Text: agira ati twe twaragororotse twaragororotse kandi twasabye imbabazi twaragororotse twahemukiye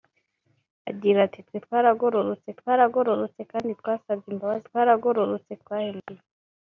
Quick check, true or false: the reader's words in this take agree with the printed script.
true